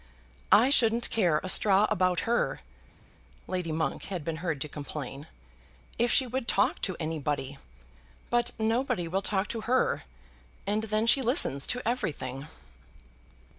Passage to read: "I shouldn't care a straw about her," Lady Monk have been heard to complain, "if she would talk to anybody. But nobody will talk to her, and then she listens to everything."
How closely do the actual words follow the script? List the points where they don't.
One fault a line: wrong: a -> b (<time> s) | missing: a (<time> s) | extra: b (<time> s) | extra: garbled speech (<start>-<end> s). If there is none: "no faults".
wrong: have -> had (4.1 s)